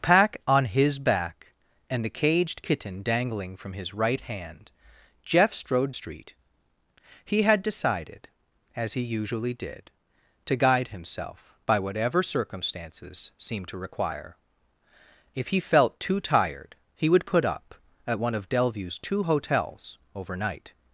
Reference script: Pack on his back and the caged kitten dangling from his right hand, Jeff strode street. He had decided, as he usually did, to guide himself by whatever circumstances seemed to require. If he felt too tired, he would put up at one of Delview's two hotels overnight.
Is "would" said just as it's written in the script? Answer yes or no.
yes